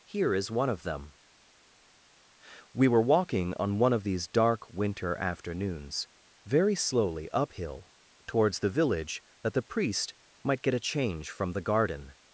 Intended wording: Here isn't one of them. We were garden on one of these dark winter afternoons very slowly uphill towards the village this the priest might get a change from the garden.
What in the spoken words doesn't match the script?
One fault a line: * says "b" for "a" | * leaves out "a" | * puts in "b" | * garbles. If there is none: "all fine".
* says "is" for "isn't"
* says "walking" for "garden"
* says "that" for "this"